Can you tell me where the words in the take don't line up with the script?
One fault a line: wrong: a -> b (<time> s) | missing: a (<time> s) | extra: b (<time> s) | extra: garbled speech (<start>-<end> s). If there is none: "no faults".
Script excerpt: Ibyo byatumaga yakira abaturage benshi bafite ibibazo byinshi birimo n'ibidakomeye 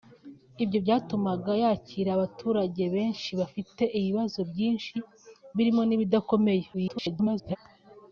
extra: garbled speech (6.7-7.6 s)